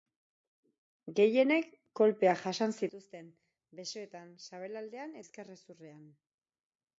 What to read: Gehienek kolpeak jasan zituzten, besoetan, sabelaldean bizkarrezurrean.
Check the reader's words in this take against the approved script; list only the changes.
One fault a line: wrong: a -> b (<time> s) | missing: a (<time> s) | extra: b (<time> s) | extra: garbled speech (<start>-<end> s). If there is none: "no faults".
no faults